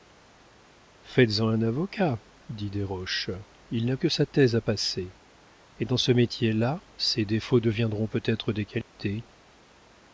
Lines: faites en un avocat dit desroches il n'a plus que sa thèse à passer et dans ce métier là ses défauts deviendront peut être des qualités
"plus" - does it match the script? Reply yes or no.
no